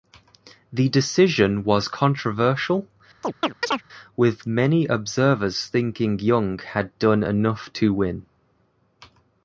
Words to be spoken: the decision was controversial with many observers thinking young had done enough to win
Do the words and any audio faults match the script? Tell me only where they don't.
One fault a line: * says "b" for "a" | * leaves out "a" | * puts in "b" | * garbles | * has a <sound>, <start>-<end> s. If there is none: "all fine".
* has a chirp, 3.2-3.8 s